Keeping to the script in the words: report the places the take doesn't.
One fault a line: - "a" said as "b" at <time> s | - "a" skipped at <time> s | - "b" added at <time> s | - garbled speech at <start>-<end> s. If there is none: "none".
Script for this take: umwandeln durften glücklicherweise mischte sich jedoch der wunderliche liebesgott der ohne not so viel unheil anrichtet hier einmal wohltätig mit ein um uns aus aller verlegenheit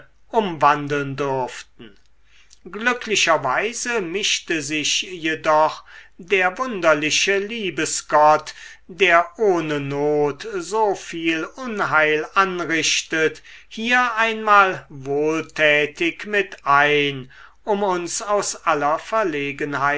none